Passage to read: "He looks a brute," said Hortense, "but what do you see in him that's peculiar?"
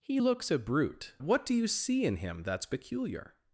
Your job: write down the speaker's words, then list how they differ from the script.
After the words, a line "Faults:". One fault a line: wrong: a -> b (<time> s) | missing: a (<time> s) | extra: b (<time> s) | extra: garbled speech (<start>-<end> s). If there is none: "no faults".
"He looks a brute," what do you see in him that's peculiar?"
Faults:
missing: said Hortense but (1.1 s)